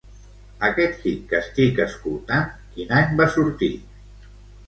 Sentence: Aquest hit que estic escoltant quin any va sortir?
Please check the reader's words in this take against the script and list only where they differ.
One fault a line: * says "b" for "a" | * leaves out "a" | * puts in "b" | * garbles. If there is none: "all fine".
all fine